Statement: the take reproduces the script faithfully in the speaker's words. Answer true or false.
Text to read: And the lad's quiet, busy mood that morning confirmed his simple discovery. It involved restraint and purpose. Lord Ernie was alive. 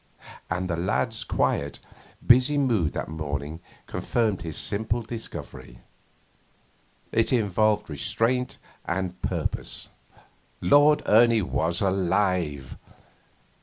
true